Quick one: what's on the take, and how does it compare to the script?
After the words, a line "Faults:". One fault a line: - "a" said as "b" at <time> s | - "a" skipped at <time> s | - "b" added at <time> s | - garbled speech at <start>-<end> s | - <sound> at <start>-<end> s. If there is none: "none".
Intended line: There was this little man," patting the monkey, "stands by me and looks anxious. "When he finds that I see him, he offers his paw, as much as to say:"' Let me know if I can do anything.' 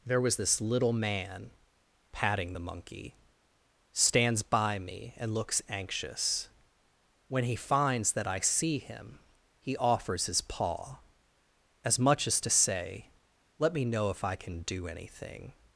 There was this little man," patting the monkey, "stands by me and looks anxious. "When he finds that I see him, he offers his paw, as much as to say:"' Let me know if I can do anything.'
Faults:
none